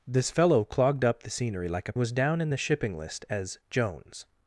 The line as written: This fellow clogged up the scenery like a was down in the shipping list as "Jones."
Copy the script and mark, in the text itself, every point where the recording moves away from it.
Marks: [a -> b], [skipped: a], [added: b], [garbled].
This fellow clogged up the scenery like a was down in the shipping list as "Jones."